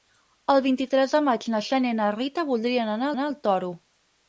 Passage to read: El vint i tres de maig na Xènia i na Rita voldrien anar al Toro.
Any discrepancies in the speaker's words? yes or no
yes